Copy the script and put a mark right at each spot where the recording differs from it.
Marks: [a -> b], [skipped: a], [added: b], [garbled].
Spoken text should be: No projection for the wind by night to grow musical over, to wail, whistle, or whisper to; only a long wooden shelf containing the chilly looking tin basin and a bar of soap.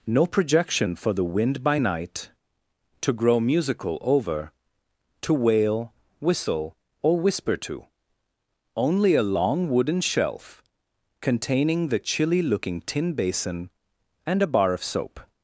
No projection for the wind by night to grow musical over, to wail, whistle, or whisper to; only a long wooden shelf containing the chilly looking tin basin and a bar of soap.